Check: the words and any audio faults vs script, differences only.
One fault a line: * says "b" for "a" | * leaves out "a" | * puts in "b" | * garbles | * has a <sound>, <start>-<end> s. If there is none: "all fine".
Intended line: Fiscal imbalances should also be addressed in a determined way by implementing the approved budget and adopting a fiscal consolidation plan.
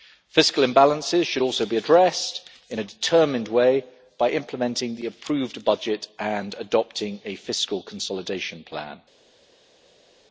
all fine